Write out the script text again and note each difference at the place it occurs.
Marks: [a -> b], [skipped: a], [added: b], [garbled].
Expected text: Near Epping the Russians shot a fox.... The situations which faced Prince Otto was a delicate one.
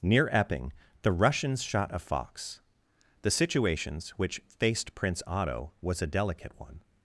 Near Epping the Russians shot a fox.... The situations which faced Prince Otto was a delicate one.